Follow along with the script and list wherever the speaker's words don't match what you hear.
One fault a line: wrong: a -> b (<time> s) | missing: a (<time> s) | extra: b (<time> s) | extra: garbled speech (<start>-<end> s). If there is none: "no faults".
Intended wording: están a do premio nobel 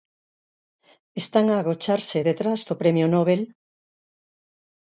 extra: agocharse detrás (1.6 s)